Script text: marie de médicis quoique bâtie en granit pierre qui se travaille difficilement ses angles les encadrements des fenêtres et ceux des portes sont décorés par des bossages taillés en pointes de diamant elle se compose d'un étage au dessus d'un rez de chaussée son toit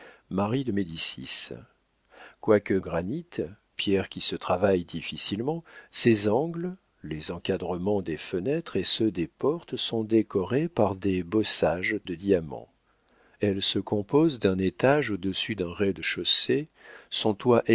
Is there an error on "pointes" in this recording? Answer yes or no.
yes